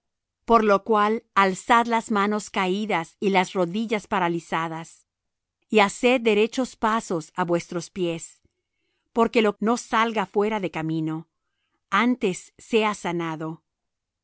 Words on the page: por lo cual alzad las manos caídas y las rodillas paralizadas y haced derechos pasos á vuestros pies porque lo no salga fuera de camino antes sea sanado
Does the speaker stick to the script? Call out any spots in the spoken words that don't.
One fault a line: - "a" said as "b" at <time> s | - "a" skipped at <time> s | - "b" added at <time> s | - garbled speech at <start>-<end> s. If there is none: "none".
none